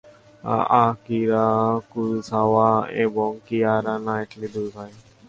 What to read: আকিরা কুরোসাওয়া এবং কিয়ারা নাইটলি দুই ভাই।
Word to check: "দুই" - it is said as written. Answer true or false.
true